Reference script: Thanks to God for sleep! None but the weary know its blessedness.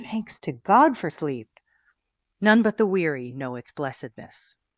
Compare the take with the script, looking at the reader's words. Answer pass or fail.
pass